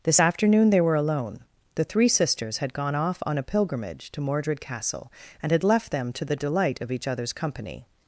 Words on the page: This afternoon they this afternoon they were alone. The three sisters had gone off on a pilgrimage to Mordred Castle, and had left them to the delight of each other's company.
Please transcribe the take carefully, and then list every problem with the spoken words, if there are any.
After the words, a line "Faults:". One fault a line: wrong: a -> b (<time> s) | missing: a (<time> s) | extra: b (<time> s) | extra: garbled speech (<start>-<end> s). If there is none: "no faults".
This afternoon they were alone. The three sisters had gone off on a pilgrimage to Mordred Castle, and had left them to the delight of each other's company.
Faults:
missing: this afternoon they (0.8 s)